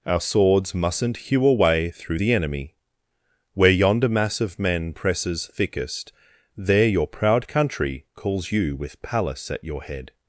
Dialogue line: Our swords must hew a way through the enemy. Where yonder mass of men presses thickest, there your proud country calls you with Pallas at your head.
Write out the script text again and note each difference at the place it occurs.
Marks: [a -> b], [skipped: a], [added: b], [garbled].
Our swords [must -> mustn't] hew a way through the enemy. Where yonder mass of men presses thickest, there your proud country calls you with Pallas at your head.